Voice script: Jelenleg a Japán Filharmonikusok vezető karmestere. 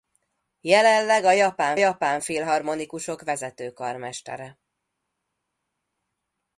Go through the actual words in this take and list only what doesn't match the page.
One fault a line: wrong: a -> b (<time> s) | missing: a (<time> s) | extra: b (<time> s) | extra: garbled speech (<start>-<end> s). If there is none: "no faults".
extra: Japán (1.7 s)